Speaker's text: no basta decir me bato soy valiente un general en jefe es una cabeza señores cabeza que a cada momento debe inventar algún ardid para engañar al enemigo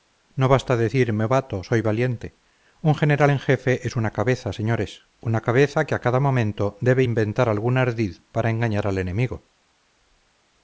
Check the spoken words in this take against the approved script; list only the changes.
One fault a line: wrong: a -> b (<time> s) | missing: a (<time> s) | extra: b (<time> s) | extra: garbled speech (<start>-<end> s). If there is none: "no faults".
extra: una (5.2 s)